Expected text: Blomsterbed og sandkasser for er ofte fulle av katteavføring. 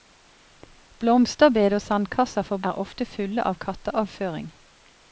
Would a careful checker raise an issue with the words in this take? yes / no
no